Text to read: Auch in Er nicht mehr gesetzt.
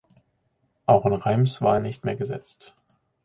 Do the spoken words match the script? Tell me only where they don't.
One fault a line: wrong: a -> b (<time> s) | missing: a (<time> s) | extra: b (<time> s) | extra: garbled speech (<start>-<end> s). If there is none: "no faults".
extra: Reims war (1.1 s)